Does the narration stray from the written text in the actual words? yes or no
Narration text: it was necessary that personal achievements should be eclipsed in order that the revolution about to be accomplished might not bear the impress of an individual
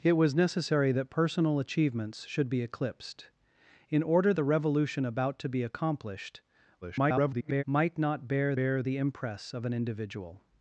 yes